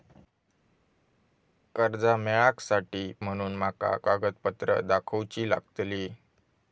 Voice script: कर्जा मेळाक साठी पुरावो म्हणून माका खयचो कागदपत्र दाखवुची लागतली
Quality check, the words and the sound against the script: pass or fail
fail